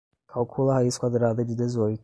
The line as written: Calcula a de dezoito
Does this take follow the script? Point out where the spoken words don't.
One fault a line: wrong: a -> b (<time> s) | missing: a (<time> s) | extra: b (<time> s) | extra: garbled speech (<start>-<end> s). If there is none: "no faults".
extra: raiz quadrada (0.7 s)